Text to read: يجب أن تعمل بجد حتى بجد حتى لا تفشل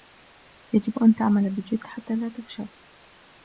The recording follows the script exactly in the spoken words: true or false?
false